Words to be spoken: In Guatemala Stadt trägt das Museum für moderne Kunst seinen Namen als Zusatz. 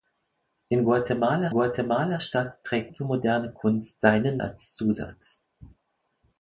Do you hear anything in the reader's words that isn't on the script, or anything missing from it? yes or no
yes